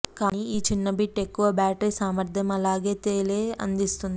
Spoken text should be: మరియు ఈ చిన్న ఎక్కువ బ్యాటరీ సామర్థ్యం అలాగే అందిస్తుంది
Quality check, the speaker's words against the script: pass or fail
fail